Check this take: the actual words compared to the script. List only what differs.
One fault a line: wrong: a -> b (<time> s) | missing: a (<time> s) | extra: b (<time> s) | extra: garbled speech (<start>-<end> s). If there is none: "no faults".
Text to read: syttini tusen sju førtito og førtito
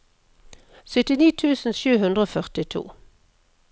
wrong: førtito -> hundre (2.1 s)